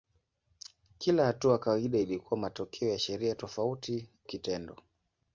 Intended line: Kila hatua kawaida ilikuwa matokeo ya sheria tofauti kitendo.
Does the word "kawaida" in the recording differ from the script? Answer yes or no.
no